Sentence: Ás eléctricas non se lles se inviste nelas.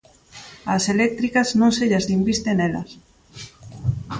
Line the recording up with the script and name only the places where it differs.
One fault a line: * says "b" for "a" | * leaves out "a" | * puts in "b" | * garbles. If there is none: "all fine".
all fine